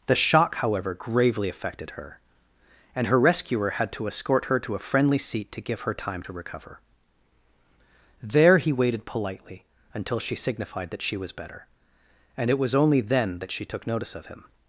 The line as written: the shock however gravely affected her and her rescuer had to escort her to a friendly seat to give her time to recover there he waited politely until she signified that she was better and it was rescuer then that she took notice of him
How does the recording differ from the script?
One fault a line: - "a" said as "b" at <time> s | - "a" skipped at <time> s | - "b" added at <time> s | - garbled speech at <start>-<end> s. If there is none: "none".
- "rescuer" said as "only" at 12.7 s